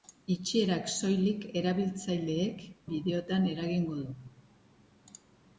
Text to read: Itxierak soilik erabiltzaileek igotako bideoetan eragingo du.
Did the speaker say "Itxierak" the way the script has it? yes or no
yes